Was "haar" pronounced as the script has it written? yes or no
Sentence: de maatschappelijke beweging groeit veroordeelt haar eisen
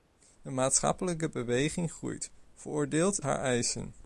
yes